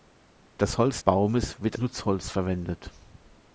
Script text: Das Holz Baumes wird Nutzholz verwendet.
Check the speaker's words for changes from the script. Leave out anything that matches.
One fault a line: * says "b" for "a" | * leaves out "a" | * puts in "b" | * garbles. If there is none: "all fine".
all fine